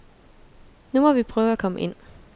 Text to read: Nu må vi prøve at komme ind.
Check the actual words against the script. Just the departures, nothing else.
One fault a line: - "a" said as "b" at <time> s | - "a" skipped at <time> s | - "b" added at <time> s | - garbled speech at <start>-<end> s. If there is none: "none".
none